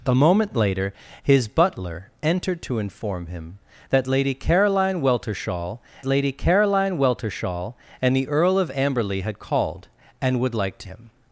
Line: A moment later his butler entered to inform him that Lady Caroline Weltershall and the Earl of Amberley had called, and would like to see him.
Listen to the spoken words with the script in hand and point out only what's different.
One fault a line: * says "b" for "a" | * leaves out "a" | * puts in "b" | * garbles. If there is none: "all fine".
* puts in "Lady Caroline Weltershall"
* leaves out "see"